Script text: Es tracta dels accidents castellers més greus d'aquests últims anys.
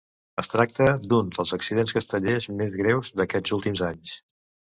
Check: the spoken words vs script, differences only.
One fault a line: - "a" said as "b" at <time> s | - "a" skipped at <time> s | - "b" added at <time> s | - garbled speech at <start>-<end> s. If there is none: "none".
- "d'un" added at 1.1 s